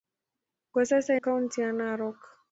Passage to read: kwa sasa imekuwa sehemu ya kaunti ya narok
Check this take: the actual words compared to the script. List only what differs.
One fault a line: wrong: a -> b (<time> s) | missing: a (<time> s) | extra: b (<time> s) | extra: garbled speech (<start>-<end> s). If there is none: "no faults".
missing: imekuwa sehemu ya (1.1 s)